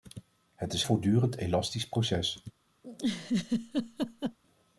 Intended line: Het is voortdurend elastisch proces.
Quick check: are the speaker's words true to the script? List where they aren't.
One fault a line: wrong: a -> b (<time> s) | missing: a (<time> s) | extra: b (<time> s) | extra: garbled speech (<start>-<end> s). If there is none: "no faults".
no faults